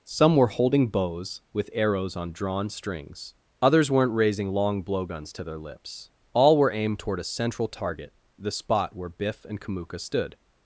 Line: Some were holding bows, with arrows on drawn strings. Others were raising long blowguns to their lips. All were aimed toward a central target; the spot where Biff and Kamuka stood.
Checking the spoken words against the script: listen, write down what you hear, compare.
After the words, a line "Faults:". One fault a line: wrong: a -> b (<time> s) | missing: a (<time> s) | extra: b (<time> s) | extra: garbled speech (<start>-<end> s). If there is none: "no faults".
Some were holding bows, with arrows on drawn strings. Others weren't raising long blowguns to their lips. All were aimed toward a central target; the spot where Biff and Kamuka stood.
Faults:
wrong: were -> weren't (3.9 s)